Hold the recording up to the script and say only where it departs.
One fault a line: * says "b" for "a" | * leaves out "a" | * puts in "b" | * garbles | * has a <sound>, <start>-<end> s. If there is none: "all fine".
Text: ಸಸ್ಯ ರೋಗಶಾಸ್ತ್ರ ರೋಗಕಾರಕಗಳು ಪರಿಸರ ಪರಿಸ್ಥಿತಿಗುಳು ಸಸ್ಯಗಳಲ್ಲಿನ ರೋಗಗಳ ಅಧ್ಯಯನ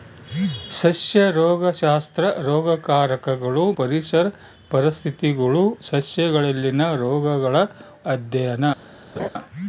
* has a laugh, 9.2-9.3 s